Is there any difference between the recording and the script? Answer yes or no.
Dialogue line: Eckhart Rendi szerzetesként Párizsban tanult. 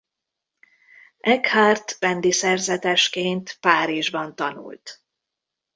no